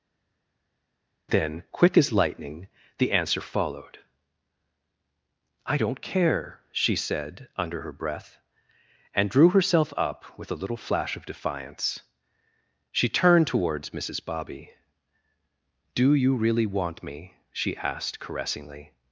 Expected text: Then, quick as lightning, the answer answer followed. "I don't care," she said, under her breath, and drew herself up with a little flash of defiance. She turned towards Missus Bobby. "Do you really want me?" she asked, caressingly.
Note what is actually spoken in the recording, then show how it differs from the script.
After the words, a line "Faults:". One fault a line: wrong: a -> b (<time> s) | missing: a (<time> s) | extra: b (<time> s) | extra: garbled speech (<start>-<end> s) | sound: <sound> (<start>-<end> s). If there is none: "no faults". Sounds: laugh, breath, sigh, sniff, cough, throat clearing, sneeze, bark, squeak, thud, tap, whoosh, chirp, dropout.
Then, quick as lightning, the answer followed. "I don't care," she said, under her breath, and drew herself up with a little flash of defiance. She turned towards Missus Bobby. "Do you really want me?" she asked, caressingly.
Faults:
missing: answer (3.4 s)